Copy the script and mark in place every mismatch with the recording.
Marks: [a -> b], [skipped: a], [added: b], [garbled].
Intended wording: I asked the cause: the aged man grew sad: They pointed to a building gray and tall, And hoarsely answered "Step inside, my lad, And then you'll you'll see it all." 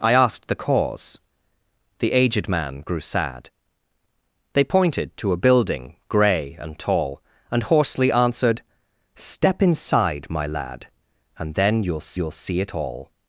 I asked the cause: the aged man grew sad: They pointed to a building gray and tall, And hoarsely answered "Step inside, my lad, And then you'll you'll see it all."